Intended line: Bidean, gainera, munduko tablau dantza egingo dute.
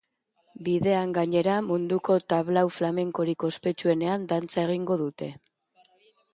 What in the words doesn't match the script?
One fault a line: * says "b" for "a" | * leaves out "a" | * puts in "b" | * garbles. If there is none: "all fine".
* puts in "flamenkorik ospetsuenean"